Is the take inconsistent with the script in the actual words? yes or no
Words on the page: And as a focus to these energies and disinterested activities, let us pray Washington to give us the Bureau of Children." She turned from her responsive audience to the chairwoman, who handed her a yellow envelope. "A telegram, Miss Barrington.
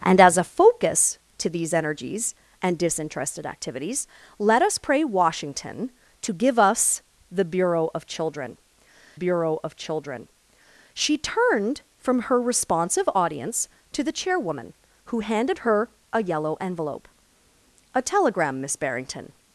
yes